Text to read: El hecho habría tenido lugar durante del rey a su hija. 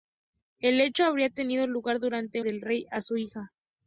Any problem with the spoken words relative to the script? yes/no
no